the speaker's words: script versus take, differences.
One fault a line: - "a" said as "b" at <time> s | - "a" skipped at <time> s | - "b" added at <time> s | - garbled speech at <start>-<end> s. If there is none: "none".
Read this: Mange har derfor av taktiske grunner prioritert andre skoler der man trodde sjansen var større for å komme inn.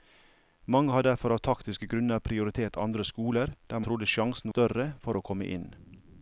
- "man" skipped at 3.8 s
- "var" skipped at 4.5 s